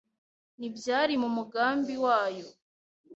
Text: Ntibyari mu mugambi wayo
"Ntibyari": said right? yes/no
yes